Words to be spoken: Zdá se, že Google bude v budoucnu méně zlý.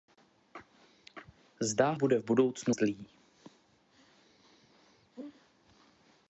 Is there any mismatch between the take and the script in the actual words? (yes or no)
yes